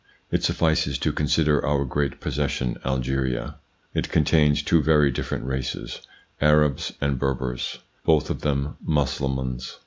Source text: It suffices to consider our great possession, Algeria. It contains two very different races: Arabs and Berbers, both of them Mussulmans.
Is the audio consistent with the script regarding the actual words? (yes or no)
yes